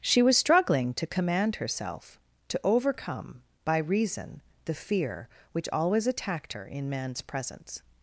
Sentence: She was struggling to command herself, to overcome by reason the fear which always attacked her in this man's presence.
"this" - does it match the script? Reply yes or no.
no